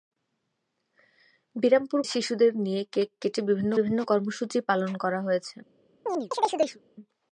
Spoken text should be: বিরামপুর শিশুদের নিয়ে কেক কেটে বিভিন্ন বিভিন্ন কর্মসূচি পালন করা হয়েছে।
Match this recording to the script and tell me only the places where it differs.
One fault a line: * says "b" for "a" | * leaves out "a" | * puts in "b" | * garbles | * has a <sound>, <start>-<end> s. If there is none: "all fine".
* has a chirp, 6.1-6.8 s